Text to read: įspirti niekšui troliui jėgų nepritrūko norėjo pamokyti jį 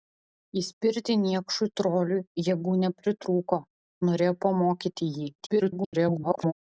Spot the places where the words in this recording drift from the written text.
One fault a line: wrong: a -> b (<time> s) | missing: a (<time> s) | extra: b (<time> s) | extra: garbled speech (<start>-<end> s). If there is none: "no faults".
extra: garbled speech (5.4-6.5 s)